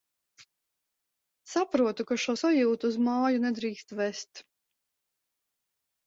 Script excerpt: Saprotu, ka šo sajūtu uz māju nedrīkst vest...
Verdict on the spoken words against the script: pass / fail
pass